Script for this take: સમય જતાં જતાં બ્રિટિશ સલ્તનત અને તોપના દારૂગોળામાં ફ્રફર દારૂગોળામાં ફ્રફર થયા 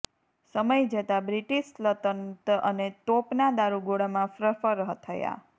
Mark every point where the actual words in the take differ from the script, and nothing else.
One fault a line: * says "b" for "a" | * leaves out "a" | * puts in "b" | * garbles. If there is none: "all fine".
* leaves out "જતાં"
* leaves out "દારૂગોળામાં ફ્રફર"